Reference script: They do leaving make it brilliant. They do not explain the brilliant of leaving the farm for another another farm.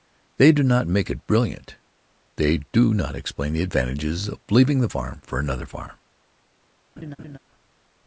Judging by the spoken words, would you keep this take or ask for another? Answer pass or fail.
fail